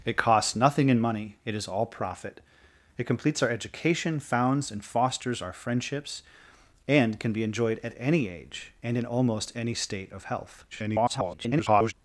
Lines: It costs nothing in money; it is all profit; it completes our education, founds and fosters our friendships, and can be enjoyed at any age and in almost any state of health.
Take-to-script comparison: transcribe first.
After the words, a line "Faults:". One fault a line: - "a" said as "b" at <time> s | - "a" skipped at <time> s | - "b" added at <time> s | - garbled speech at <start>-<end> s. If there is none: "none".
It costs nothing in money; it is all profit; it completes our education, founds and fosters our friendships, and can be enjoyed at any age and in almost any state of health. [garbled]
Faults:
- garbled speech at 10.7-11.9 s